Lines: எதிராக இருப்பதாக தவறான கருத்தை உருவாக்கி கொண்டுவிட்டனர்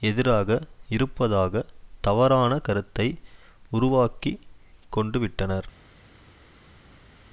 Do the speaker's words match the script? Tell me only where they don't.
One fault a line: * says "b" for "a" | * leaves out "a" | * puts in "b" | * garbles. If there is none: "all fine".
all fine